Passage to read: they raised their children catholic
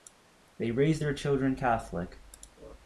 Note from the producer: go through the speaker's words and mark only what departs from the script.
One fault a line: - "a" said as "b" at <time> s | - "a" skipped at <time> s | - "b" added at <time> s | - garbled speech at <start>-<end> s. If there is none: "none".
none